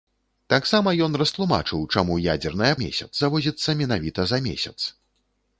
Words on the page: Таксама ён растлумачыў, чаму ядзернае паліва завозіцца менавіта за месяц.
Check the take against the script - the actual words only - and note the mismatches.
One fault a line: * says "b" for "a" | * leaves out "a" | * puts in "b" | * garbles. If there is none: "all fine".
* says "месяц" for "паліва"